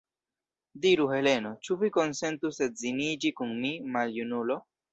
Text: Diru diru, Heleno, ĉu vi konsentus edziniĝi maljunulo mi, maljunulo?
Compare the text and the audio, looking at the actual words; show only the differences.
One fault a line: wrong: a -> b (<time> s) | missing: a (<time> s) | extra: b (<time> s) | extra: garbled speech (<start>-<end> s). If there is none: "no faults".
missing: diru (1.1 s)
wrong: maljunulo -> kun (3.4 s)